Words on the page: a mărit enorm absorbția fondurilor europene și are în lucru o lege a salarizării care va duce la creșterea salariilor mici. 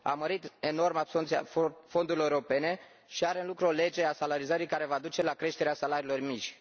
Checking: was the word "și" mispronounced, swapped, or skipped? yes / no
no